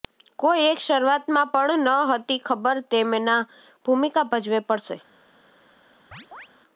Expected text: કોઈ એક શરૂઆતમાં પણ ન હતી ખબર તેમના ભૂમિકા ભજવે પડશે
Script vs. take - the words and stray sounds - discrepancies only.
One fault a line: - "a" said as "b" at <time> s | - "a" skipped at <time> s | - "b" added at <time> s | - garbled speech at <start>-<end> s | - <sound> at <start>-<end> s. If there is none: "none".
- chirp at 6.1-6.5 s